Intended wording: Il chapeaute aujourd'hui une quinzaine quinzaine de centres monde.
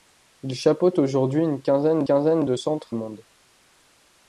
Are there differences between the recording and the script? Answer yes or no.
no